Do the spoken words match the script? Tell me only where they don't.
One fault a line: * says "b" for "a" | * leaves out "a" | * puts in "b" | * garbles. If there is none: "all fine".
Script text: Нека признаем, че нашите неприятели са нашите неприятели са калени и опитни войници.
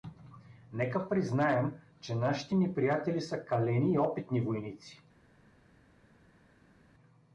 * leaves out "нашите неприятели са"